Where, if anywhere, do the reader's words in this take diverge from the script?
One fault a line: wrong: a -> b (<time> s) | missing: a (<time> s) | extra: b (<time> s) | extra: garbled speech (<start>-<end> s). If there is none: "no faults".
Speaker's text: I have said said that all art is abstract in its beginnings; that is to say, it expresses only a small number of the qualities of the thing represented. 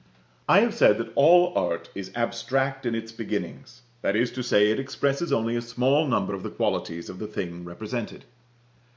missing: said (1.0 s)